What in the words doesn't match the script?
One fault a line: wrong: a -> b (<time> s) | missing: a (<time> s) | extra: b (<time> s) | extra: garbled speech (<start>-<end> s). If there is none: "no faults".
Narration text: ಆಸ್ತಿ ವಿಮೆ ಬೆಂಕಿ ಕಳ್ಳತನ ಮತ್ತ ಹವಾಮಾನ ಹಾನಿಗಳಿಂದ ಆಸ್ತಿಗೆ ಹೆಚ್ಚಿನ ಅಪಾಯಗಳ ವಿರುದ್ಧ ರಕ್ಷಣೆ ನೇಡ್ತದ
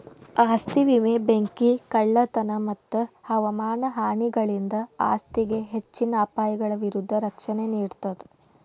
no faults